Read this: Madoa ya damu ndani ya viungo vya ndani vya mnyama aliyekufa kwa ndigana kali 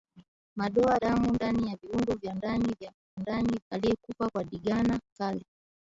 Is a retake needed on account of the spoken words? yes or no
yes